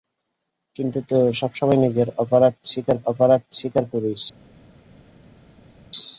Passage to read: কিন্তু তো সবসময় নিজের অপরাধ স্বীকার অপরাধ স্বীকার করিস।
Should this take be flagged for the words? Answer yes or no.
no